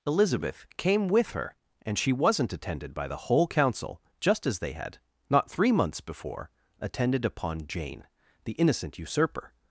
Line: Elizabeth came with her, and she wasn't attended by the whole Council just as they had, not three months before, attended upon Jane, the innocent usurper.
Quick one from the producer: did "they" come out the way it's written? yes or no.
yes